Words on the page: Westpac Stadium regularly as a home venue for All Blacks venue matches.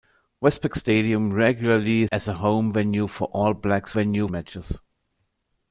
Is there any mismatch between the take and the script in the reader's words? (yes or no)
no